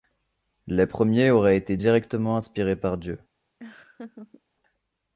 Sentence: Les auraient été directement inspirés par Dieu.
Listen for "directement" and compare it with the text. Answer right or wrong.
right